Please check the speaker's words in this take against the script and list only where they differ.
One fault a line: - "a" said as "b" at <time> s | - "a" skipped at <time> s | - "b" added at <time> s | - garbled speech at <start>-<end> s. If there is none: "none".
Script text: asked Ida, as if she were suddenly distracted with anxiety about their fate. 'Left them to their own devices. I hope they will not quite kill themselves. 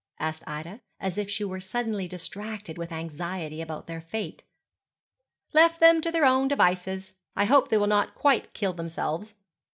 none